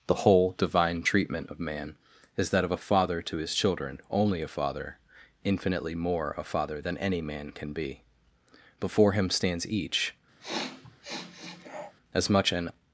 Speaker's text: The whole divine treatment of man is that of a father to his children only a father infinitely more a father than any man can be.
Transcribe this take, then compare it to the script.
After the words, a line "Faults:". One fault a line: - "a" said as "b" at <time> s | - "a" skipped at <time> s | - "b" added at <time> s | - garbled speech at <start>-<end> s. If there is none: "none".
The whole divine treatment of man is that of a father to his children only a father infinitely more a father than any man can be. Before him stands each, as much an
Faults:
- "Before him stands each as much an" added at 8.8 s